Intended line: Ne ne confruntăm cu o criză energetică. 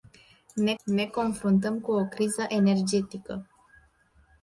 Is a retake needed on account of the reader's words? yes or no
no